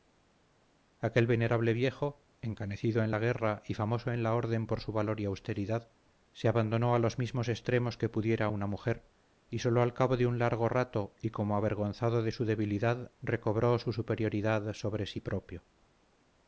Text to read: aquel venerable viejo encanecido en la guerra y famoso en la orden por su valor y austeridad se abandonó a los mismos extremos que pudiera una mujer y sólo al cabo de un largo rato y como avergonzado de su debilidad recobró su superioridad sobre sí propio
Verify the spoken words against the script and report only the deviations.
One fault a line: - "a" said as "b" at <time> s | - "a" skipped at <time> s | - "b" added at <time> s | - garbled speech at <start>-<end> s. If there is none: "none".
none